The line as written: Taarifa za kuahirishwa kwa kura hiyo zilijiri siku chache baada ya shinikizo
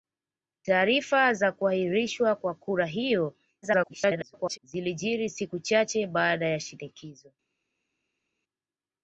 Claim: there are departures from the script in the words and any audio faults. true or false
true